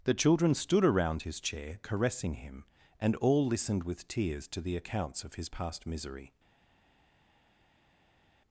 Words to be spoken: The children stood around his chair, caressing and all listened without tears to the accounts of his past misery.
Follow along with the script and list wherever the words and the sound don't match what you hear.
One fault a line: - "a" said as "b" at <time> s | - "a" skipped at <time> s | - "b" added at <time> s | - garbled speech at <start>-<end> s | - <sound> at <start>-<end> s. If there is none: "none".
- "him" added at 2.4 s
- "without" said as "with" at 3.8 s